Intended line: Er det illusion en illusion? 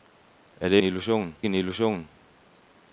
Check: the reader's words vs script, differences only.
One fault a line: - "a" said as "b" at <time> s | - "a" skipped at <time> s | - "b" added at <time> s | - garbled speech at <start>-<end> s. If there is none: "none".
none